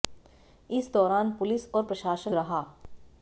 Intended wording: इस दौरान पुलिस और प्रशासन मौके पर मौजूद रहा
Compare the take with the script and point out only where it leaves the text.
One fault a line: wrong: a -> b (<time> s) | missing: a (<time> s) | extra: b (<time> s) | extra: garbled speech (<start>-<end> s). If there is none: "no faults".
missing: मौके पर मौजूद (2.3 s)